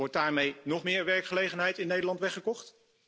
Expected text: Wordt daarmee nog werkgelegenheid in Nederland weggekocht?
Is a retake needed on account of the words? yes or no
yes